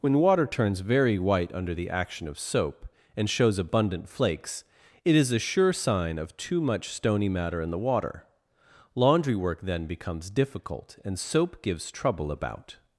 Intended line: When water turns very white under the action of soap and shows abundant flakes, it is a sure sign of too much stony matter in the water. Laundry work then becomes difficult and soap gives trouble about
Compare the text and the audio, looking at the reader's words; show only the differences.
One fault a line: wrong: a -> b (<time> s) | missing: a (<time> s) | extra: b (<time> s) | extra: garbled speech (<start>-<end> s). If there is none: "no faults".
no faults